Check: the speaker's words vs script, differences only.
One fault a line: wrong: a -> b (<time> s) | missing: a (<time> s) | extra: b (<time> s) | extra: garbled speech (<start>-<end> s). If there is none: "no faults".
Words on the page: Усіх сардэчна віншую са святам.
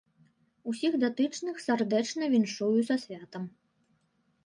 extra: датычных (1.0 s)